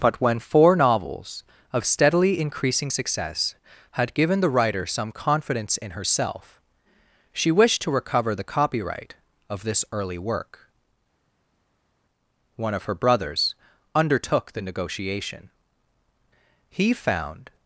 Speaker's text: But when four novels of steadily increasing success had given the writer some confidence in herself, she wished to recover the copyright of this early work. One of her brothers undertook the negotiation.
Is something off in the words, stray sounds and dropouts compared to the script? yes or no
yes